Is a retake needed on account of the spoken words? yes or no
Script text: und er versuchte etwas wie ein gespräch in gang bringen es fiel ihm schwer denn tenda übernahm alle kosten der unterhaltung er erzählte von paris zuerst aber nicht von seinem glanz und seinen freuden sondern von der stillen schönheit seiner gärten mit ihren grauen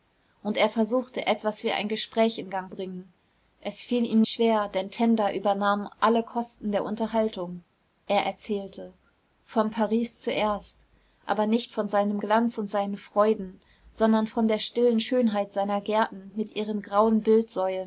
no